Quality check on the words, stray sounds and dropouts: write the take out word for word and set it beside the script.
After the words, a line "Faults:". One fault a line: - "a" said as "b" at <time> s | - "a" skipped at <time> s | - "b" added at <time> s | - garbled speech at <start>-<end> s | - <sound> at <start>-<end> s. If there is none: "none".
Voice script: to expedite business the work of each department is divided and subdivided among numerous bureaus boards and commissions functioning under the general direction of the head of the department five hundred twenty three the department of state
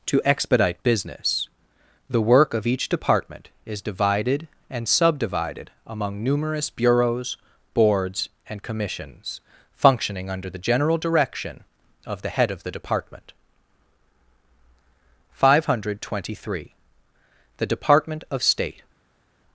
to expedite business the work of each department is divided and subdivided among numerous bureaus boards and commissions functioning under the general direction of the head of the department five hundred twenty three the department of state
Faults:
none